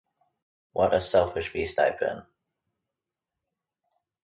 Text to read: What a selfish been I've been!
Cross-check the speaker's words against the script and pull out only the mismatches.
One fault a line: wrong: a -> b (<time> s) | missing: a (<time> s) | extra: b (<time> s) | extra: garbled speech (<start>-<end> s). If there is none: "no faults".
wrong: been -> beast (1.5 s)